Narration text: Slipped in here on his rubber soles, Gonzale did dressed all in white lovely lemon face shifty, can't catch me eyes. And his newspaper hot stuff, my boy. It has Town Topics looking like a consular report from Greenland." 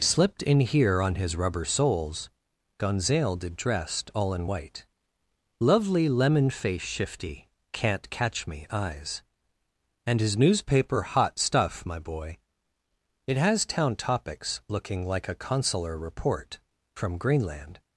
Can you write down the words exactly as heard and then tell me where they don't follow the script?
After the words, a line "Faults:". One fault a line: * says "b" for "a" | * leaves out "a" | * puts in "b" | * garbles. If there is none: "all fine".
Slipped in here on his rubber soles, Gonzale did dressed all in white lovely lemon face shifty, can't catch me eyes. And his newspaper hot stuff, my boy. It has Town Topics looking like a consular report from Greenland."
Faults:
all fine